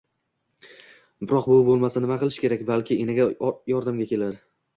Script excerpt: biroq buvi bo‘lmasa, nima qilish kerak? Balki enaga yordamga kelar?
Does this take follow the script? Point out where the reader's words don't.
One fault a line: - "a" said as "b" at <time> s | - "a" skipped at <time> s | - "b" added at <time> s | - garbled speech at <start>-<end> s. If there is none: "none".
none